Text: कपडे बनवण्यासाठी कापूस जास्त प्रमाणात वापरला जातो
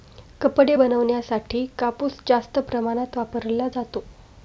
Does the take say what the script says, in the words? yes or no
yes